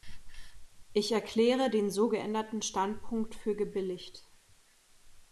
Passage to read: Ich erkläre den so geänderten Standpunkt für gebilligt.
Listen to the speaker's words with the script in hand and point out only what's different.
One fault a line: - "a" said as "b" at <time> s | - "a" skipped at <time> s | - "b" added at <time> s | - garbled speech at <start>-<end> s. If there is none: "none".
none